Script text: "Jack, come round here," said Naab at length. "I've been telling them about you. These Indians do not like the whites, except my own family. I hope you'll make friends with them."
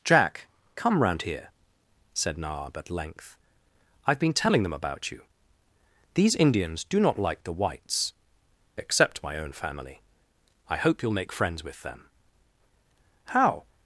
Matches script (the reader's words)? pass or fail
fail